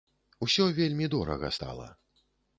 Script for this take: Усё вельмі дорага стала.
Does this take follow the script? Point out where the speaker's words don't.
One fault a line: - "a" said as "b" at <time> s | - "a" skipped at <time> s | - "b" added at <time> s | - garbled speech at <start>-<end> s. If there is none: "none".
none